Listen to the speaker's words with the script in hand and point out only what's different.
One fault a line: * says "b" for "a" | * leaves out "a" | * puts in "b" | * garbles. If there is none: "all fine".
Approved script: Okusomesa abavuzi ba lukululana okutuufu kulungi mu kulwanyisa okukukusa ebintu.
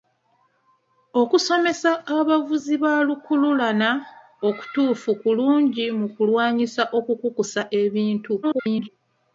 * garbles